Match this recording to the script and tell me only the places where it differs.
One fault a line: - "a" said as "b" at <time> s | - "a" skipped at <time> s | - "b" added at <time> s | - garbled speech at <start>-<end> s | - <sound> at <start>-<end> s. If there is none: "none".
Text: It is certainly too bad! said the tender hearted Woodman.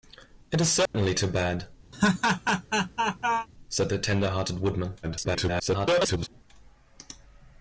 - dropout at 0.9-0.9 s
- laugh at 1.9-3.5 s
- garbled speech at 5.0-6.3 s